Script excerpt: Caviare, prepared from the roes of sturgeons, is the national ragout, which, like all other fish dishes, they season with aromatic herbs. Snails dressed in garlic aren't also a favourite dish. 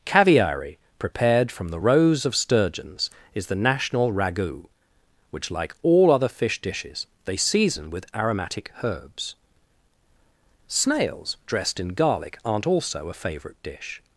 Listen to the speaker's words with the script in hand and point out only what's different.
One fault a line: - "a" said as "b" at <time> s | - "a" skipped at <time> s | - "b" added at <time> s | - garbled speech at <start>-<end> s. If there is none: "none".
none